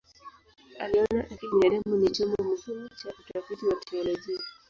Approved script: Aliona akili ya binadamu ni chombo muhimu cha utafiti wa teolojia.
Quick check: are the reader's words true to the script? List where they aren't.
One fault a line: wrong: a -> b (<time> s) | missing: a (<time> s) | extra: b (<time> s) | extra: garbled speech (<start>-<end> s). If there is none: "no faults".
missing: ya (1.6 s)